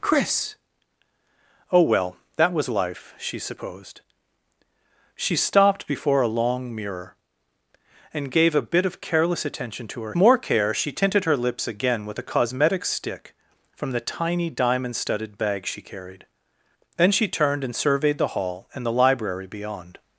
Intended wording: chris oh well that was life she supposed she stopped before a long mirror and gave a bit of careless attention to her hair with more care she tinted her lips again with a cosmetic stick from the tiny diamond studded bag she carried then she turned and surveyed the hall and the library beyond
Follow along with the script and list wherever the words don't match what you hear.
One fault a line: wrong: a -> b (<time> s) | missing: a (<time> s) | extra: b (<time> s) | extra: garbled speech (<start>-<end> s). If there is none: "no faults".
missing: hair with (10.2 s)